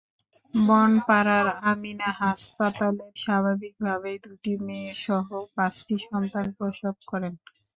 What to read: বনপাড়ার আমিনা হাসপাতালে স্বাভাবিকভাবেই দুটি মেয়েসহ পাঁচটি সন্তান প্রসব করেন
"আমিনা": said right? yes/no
yes